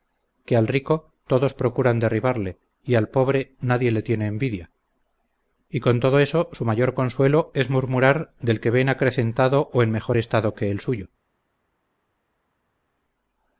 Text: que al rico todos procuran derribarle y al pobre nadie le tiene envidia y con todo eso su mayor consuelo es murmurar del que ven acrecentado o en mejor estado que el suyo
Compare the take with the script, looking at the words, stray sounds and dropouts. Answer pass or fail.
pass